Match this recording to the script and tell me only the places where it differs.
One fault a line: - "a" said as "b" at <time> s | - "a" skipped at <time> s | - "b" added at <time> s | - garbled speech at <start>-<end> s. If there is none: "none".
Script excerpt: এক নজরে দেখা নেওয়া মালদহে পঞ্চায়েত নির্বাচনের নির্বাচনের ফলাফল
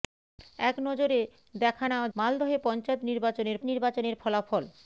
none